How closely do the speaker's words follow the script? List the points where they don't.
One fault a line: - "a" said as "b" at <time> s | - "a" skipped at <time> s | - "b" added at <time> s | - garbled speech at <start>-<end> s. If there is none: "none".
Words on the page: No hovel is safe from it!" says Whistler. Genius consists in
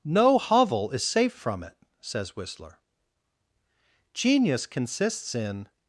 none